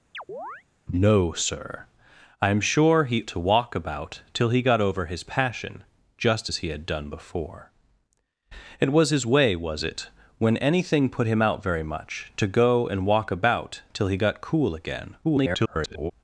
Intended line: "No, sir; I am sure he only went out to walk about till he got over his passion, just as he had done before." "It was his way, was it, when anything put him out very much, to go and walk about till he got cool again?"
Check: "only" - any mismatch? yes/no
yes